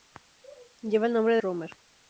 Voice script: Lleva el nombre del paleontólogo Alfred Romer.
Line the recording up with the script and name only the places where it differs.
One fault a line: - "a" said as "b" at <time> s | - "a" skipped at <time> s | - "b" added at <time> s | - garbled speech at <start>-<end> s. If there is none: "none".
- "del paleontólogo Alfred" skipped at 1.4 s